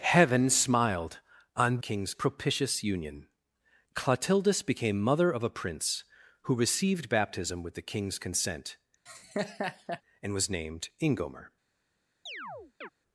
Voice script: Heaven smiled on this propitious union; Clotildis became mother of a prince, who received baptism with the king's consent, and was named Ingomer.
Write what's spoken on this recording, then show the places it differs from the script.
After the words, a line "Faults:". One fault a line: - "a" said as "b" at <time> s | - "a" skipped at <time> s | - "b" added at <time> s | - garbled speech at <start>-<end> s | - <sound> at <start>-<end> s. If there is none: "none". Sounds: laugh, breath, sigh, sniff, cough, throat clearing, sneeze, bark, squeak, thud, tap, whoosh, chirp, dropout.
Heaven smiled on king's propitious union; Clotildis became mother of a prince, who received baptism with the king's consent, and was named Ingomer.
Faults:
- "this" said as "king's" at 1.8 s
- laugh at 9.1-10.0 s
- chirp at 12.3-12.9 s